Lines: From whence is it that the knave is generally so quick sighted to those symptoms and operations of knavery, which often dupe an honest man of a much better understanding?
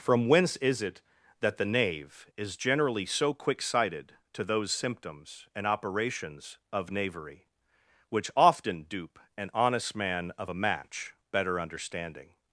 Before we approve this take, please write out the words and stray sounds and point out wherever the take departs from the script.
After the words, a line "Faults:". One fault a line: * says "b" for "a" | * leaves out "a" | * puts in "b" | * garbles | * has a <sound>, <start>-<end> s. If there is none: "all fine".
From whence is it that the knave is generally so quick sighted to those symptoms and operations of knavery, which often dupe an honest man of a match better understanding?
Faults:
* says "match" for "much"